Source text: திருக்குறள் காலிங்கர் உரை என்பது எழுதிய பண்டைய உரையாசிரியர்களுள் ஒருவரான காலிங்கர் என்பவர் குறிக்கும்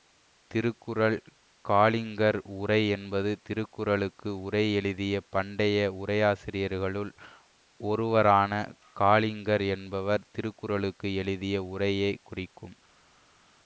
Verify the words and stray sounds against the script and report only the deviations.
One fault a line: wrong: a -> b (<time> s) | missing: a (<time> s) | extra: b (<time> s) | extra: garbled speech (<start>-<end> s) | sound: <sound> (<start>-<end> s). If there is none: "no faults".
extra: திருக்குறளுக்கு உரை (3.4 s)
extra: திருக்குறளுக்கு எழுதிய உரையை (10.3 s)